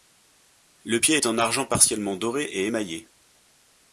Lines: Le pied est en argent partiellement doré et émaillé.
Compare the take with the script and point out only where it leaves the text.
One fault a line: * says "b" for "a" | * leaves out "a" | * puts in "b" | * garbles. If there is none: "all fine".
all fine